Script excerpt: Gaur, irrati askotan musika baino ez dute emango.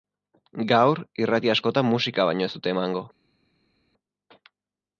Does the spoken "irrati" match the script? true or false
true